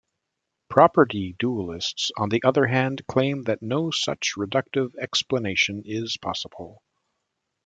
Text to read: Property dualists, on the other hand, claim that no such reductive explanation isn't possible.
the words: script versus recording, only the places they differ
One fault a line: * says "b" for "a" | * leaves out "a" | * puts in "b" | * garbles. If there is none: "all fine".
* says "is" for "isn't"